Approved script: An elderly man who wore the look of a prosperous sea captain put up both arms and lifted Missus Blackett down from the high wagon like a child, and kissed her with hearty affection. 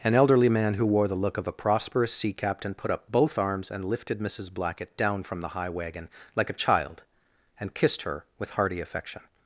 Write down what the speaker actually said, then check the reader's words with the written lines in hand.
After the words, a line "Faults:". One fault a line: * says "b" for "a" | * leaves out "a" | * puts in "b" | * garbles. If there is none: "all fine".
An elderly man who wore the look of a prosperous sea captain put up both arms and lifted Missus Blackett down from the high wagon like a child, and kissed her with hearty affection.
Faults:
all fine